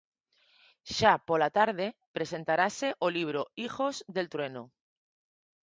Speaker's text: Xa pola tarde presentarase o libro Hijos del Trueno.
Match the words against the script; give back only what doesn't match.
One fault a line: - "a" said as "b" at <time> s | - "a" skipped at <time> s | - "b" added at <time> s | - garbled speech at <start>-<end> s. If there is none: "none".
none